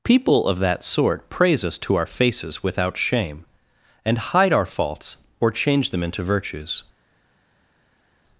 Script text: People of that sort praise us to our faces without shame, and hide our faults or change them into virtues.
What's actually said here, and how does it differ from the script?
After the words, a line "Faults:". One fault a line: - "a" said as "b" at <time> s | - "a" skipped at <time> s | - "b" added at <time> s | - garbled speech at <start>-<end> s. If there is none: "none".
People of that sort praise us to our faces without shame, and hide our faults or change them into virtues.
Faults:
none